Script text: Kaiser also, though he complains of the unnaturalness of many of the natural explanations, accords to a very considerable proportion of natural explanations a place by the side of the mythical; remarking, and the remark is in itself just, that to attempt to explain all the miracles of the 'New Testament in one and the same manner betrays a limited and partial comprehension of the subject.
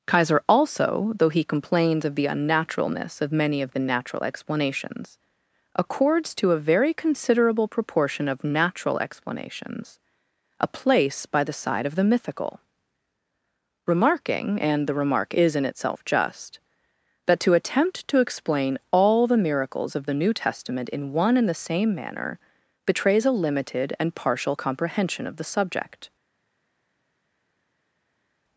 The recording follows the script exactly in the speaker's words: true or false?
true